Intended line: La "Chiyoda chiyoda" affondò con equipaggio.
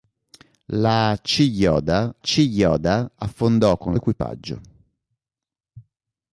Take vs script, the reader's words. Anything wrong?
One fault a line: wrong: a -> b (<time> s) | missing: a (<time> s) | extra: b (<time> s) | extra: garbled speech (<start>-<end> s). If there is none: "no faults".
no faults